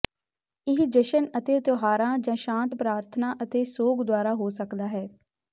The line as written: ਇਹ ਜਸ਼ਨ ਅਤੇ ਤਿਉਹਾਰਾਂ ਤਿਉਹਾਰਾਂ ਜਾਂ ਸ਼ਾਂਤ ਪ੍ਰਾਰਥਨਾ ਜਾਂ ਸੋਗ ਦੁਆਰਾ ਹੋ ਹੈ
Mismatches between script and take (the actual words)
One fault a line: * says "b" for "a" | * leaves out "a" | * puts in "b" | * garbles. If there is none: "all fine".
* leaves out "ਤਿਉਹਾਰਾਂ"
* says "ਅਤੇ" for "ਜਾਂ"
* puts in "ਸਕਦਾ"